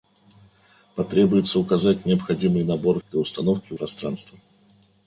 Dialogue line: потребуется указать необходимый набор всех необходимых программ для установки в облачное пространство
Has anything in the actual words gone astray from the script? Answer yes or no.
yes